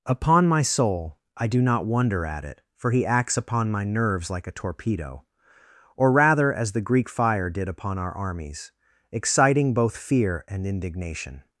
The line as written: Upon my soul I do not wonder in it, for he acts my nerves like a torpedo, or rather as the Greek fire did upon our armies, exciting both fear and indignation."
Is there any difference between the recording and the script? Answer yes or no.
yes